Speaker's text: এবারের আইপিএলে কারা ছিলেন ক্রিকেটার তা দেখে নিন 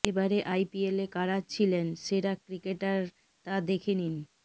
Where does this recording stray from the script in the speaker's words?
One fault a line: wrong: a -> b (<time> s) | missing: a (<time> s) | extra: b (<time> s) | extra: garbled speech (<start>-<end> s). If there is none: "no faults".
extra: সেরা (2.0 s)